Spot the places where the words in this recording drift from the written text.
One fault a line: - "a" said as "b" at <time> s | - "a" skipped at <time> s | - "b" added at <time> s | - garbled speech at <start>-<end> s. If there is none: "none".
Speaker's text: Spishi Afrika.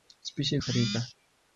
none